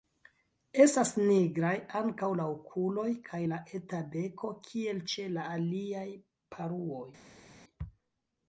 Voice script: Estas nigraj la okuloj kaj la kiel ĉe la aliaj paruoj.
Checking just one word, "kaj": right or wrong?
right